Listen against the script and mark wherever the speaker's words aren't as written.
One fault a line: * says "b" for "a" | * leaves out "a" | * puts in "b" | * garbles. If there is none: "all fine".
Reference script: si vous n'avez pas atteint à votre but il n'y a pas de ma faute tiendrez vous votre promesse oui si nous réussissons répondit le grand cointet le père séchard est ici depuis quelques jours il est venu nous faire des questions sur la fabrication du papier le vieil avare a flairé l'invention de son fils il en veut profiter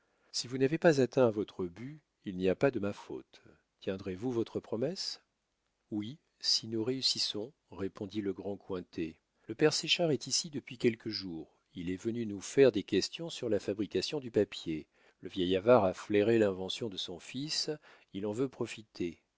all fine